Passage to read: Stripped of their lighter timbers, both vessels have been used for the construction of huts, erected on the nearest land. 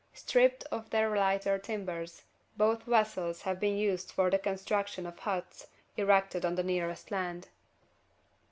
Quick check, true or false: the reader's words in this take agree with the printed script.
true